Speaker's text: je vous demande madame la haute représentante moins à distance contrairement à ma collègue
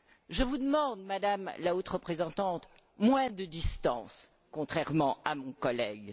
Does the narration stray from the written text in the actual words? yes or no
yes